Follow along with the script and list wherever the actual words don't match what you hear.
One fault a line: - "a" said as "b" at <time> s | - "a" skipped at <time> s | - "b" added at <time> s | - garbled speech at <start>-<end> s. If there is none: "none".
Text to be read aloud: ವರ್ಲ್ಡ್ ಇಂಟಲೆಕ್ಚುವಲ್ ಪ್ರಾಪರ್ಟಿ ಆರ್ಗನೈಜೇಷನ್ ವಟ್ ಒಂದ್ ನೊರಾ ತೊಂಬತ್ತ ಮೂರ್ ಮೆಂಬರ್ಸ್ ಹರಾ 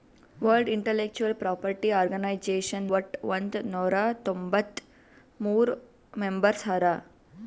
none